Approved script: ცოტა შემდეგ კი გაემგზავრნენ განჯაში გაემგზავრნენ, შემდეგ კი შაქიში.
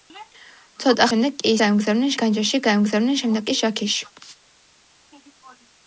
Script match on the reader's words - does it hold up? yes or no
yes